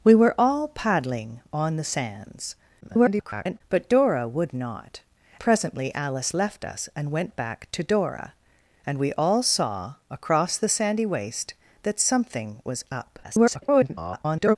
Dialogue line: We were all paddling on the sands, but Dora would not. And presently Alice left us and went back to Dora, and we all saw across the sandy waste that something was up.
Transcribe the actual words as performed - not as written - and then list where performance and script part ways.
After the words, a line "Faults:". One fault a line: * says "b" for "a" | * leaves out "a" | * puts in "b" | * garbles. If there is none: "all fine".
We were all paddling on the sands, [garbled] but Dora would not. Presently Alice left us and went back to Dora, and we all saw across the sandy waste that something was up. [garbled]
Faults:
* garbles
* leaves out "And"
* garbles